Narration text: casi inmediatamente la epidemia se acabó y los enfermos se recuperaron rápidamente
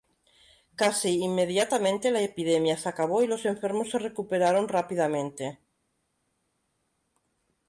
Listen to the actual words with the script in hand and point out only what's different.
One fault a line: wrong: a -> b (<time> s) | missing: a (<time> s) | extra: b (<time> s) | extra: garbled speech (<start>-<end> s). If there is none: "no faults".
no faults